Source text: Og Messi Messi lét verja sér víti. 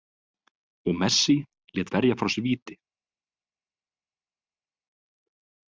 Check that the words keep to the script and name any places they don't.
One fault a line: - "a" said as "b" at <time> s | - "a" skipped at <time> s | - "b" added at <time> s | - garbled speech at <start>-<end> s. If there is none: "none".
- "Messi" skipped at 1.4 s
- "frá" added at 2.2 s